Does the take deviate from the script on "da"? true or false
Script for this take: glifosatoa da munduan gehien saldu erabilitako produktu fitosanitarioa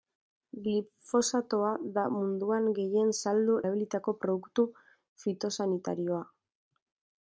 false